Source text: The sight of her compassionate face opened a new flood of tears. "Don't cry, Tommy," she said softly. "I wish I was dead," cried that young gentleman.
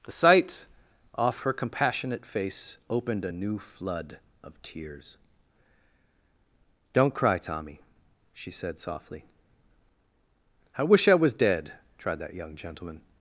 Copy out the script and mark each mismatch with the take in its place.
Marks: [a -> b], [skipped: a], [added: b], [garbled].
The sight [of -> off] her compassionate face opened a new flood of tears. "Don't cry, Tommy," she said softly. "I wish I was dead," [cried -> tried] that young gentleman.